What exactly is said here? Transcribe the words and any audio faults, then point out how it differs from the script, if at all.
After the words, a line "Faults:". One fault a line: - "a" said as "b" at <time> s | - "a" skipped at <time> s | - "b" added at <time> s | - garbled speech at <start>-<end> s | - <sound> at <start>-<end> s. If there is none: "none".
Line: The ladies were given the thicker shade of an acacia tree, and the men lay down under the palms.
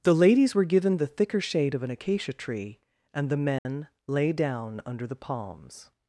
The ladies were given the thicker shade of an acacia tree, and the men lay down under the palms.
Faults:
- dropout at 3.6-3.7 s